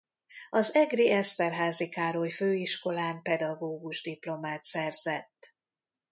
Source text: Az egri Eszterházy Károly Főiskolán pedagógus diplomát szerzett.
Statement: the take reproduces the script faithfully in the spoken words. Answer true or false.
true